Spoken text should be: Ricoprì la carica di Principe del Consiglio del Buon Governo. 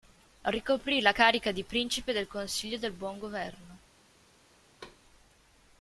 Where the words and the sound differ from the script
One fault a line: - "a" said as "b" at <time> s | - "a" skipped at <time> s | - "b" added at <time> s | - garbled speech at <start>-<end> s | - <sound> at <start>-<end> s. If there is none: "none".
- thud at 4.8-5.0 s